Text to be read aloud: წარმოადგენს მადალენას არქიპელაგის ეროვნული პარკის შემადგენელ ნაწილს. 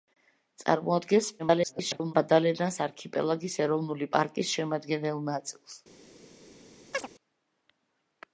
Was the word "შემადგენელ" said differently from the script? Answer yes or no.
no